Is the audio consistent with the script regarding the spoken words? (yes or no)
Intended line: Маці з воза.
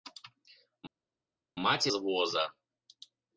yes